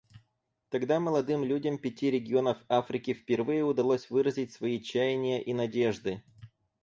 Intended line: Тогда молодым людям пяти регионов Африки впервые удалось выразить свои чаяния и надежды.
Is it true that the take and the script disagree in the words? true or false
false